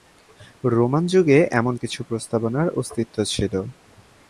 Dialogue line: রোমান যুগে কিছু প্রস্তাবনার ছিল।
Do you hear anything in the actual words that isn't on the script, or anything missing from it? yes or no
yes